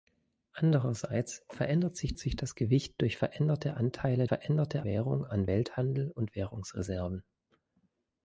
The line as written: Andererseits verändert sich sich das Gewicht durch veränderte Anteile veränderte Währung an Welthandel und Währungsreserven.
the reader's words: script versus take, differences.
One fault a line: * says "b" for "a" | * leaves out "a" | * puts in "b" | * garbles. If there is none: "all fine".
all fine